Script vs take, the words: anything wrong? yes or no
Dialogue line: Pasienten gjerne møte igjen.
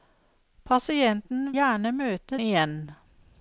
no